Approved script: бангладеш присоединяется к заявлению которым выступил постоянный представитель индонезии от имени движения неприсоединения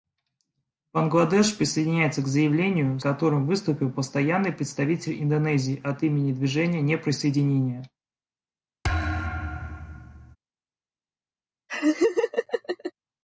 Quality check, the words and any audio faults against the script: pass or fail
fail